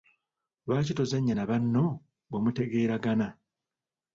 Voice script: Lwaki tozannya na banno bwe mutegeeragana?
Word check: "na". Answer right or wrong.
right